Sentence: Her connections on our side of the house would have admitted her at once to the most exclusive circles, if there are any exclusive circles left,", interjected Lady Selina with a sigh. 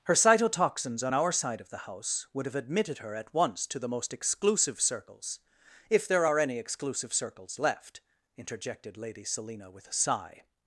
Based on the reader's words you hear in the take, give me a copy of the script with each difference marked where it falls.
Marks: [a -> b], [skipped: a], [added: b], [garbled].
Her [connections -> cytotoxins] on our side of the house would have admitted her at once to the most exclusive circles, if there are any exclusive circles left,", interjected Lady Selina with a sigh.